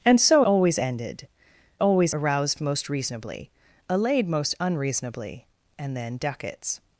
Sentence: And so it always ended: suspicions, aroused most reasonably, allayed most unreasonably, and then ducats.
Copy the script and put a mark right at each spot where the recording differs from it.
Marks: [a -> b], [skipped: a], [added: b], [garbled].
And so [skipped: it] always ended: [suspicions, -> always] aroused most reasonably, allayed most unreasonably, and then ducats.